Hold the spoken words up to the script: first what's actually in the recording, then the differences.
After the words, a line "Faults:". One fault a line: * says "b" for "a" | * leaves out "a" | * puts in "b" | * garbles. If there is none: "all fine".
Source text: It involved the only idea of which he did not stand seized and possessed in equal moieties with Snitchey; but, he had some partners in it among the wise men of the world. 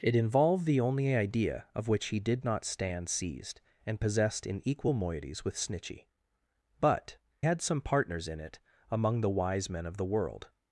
It involved the only idea of which he did not stand seized and possessed in equal moieties with Snitchey; but, had some partners in it among the wise men of the world.
Faults:
* leaves out "he"